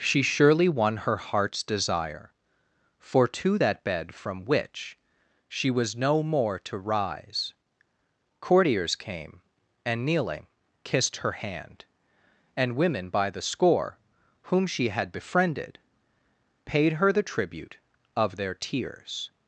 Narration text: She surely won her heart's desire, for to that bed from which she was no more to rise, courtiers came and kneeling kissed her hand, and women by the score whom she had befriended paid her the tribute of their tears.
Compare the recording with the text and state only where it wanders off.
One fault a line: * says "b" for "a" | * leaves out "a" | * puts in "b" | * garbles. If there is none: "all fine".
all fine